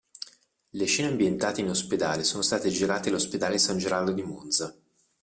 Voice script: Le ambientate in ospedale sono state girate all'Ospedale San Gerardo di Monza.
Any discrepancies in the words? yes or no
yes